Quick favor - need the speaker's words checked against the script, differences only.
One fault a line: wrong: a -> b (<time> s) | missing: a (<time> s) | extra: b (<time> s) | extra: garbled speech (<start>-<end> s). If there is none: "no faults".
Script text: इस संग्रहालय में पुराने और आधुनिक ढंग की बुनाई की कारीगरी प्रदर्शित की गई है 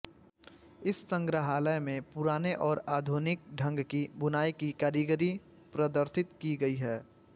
no faults